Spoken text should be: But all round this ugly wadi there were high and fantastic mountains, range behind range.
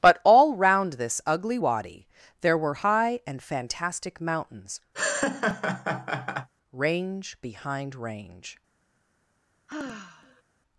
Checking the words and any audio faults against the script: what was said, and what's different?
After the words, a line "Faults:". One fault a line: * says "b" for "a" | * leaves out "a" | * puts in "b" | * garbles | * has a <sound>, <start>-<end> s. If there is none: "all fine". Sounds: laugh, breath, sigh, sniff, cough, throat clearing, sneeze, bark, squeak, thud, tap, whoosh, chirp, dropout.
But all round this ugly wadi there were high and fantastic mountains, range behind range.
Faults:
* has a laugh, 4.9-6.5 s
* has a sigh, 9.7-10.4 s